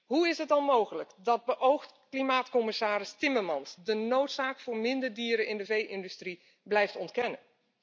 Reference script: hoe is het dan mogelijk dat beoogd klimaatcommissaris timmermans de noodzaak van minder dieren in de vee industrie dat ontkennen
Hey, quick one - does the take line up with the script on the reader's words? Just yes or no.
no